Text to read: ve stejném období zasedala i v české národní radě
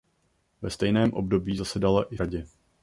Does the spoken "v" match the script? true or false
false